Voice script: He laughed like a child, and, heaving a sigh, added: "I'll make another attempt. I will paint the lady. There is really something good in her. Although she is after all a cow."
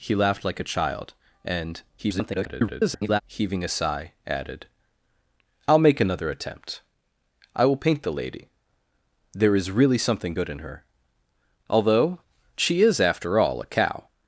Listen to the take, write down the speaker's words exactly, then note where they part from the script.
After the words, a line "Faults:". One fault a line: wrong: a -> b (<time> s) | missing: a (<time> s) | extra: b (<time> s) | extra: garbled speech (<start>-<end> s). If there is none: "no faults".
He laughed like a child, and, [garbled] heaving a sigh, added: "I'll make another attempt. I will paint the lady. There is really something good in her. Although she is after all a cow."
Faults:
extra: garbled speech (2.0-3.2 s)